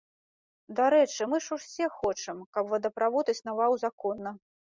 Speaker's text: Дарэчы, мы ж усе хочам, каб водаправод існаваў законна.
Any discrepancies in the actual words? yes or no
no